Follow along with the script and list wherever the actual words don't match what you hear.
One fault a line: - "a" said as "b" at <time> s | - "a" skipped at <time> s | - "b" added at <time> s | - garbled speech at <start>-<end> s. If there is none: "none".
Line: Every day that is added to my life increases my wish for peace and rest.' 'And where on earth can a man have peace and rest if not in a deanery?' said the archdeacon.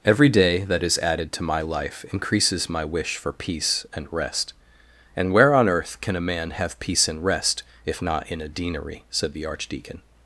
none